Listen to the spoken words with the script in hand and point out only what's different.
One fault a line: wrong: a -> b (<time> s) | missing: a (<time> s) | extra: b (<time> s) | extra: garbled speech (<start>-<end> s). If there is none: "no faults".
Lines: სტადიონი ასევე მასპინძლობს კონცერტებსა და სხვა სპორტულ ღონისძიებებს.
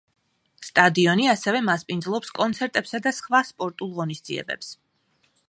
no faults